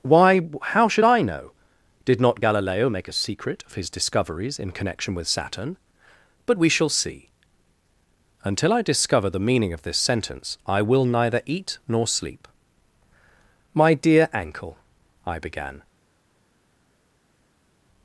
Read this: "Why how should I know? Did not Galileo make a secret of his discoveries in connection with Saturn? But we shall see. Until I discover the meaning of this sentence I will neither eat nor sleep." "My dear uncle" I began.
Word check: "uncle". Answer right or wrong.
wrong